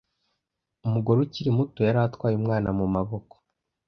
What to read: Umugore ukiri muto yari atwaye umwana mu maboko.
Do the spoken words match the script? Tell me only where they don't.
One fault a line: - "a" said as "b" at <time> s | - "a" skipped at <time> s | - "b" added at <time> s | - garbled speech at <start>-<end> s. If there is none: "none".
none